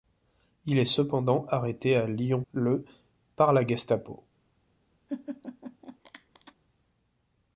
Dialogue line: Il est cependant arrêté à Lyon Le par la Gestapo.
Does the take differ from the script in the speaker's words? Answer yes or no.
no